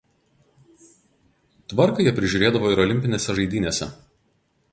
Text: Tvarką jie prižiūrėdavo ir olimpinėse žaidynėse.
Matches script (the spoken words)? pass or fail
pass